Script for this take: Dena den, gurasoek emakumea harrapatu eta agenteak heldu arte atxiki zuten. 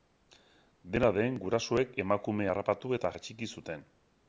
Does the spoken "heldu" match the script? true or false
false